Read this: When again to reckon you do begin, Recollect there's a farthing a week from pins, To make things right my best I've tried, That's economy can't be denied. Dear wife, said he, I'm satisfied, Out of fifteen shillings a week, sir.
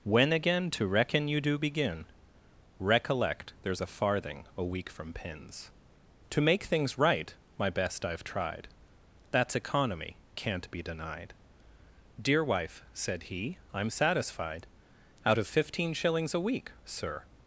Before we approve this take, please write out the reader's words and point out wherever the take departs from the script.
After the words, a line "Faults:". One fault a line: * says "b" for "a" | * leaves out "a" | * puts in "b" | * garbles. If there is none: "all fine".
When again to reckon you do begin, Recollect there's a farthing a week from pins, To make things right my best I've tried, That's economy can't be denied. Dear wife, said he, I'm satisfied, Out of fifteen shillings a week, sir.
Faults:
all fine